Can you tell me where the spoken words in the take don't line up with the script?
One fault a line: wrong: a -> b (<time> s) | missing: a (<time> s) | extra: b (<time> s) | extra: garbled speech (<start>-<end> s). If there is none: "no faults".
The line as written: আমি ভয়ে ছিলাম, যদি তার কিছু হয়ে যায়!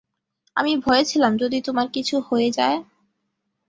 wrong: তার -> তোমার (1.6 s)